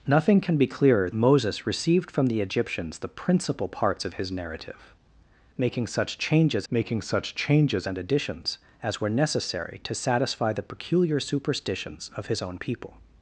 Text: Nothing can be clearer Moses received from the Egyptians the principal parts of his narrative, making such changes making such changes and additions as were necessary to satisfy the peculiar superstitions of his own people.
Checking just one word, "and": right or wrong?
right